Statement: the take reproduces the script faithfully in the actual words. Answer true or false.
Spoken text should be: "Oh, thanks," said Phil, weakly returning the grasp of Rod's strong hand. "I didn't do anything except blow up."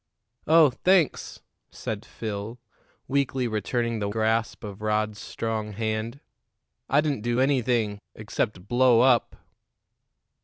true